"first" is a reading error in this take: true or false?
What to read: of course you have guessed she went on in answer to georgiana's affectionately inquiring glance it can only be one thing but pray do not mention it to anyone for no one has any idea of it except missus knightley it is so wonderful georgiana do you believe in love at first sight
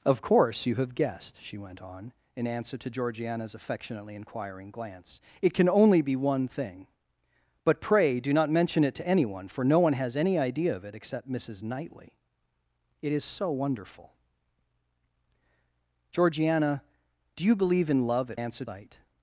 true